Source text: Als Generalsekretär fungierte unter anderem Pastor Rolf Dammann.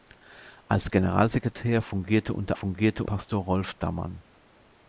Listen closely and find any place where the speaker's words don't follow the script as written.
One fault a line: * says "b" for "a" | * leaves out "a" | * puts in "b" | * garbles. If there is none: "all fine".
* says "fungierte" for "anderem"